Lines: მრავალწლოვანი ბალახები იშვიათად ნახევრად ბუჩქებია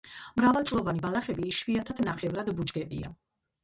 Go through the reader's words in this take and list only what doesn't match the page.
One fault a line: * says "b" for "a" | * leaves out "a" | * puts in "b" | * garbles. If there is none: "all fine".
all fine